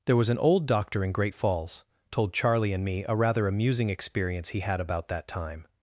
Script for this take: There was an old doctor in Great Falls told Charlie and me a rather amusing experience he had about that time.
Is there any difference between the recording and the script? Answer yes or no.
no